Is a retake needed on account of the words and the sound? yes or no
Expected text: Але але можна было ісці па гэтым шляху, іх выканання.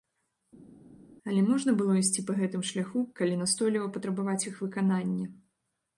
yes